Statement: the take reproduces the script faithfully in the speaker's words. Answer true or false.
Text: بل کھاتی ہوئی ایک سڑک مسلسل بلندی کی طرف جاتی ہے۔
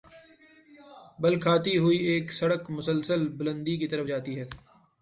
true